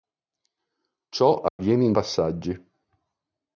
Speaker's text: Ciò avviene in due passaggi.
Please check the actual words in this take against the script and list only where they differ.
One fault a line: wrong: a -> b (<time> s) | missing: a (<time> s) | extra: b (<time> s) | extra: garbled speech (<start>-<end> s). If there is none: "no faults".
missing: due (1.9 s)